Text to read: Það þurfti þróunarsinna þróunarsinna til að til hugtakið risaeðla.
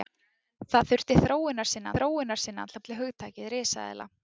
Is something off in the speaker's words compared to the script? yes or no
no